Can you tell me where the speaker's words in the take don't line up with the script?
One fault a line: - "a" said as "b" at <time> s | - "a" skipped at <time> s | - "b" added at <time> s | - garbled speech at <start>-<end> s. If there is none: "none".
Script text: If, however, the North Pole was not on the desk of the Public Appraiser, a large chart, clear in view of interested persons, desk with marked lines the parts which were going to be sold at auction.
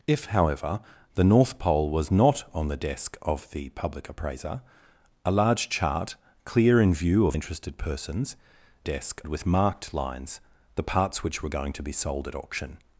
none